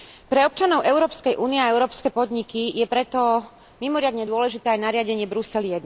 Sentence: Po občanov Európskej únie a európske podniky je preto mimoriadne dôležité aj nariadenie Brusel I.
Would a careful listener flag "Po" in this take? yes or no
yes